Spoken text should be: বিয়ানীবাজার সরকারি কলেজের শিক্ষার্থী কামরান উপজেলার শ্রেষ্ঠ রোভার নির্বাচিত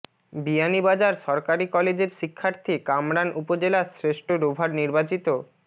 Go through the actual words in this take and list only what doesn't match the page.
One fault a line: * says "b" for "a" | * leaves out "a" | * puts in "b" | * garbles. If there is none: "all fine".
all fine